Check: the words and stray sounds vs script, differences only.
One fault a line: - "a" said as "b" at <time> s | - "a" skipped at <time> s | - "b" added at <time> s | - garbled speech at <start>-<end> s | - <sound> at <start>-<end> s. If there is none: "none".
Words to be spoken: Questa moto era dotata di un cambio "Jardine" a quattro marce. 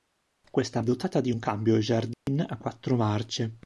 - "moto era" skipped at 0.8 s
- dropout at 2.1-2.3 s